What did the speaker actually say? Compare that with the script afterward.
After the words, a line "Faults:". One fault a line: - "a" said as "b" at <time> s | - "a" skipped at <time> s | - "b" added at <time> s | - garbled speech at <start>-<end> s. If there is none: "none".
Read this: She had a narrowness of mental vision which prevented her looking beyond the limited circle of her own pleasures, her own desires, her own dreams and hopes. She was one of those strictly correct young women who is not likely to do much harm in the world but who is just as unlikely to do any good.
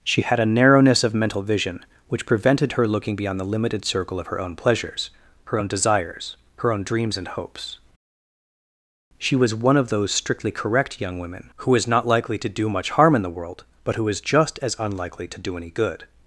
She had a narrowness of mental vision which prevented her looking beyond the limited circle of her own pleasures, her own desires, her own dreams and hopes. She was one of those strictly correct young women who is not likely to do much harm in the world but who is just as unlikely to do any good.
Faults:
none